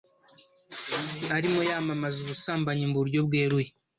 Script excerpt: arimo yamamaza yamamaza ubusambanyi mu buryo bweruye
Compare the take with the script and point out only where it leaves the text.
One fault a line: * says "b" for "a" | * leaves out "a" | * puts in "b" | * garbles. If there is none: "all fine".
* leaves out "yamamaza"